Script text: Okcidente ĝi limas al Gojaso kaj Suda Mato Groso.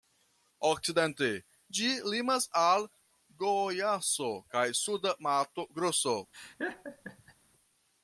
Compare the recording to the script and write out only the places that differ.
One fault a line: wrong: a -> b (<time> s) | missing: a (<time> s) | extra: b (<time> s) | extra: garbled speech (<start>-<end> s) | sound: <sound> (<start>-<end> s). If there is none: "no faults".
sound: laugh (6.3-7.3 s)